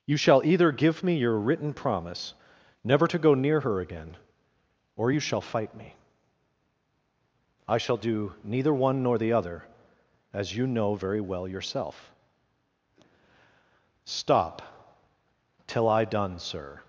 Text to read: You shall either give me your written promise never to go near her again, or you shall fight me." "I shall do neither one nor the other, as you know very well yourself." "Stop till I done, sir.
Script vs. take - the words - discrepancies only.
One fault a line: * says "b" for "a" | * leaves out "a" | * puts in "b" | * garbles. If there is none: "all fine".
all fine